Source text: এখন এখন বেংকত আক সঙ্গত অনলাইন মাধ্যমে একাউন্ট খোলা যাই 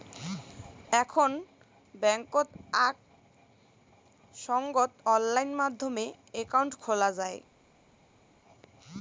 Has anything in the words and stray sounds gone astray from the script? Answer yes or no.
yes